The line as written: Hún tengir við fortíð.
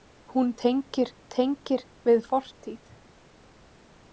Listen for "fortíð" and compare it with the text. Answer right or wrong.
right